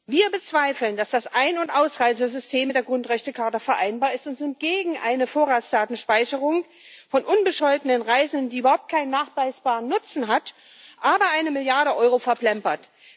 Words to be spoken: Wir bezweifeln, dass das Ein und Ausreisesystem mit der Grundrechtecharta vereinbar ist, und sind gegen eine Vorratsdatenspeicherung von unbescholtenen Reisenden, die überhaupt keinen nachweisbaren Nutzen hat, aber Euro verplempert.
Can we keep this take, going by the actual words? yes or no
no